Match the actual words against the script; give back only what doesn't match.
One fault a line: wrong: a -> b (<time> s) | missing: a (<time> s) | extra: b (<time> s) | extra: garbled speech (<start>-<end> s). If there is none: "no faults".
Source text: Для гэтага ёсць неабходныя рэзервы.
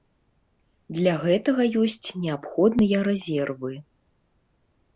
no faults